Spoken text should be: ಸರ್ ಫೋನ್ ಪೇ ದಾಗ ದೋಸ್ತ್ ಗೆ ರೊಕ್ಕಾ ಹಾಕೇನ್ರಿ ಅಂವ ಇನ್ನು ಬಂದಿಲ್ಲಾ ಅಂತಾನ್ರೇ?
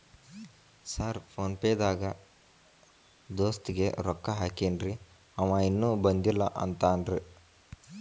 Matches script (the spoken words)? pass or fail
pass